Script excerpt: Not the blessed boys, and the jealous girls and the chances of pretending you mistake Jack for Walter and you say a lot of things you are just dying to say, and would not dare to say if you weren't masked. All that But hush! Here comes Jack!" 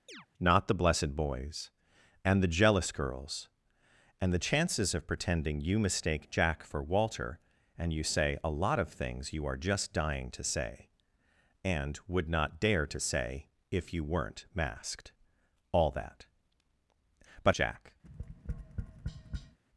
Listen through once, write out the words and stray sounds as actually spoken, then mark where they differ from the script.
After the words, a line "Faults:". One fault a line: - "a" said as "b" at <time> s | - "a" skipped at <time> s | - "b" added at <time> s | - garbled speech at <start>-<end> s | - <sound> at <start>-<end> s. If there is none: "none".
Not the blessed boys, and the jealous girls and the chances of pretending you mistake Jack for Walter and you say a lot of things you are just dying to say, and would not dare to say if you weren't masked. All that But Jack!"
Faults:
- chirp at 0.1-0.3 s
- "hush Here comes" skipped at 17.6 s
- tap at 18.0-19.6 s